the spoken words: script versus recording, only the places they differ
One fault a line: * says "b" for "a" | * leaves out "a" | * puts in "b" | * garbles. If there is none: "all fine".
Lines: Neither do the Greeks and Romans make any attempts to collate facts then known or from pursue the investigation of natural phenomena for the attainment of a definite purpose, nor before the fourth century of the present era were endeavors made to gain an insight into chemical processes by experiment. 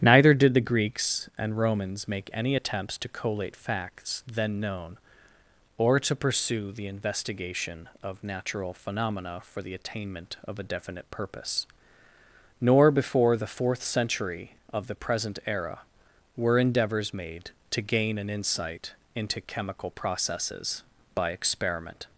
* says "did" for "do"
* says "to" for "from"